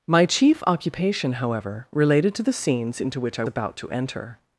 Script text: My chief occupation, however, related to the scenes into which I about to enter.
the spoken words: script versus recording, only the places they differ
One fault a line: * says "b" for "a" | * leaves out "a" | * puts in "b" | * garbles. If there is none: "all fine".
all fine